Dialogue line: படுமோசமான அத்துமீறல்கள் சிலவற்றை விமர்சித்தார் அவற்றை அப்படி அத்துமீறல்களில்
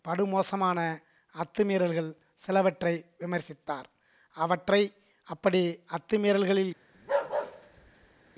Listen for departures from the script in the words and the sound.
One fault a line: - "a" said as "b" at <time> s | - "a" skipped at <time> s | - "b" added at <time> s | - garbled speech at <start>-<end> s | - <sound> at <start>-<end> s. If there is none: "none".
- bark at 6.9-8.4 s